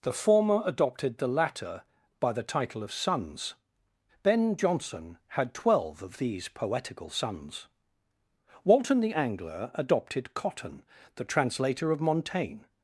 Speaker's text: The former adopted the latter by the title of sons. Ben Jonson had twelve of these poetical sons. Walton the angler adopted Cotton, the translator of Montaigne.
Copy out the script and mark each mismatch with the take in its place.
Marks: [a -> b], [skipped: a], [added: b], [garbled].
The former adopted the latter by the title of sons. Ben Jonson had twelve of these poetical sons. Walton the angler adopted Cotton, the translator of Montaigne.